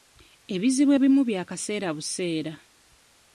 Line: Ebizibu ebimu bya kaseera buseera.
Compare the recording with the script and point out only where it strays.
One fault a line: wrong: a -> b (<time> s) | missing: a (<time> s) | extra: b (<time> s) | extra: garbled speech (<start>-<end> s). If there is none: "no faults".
no faults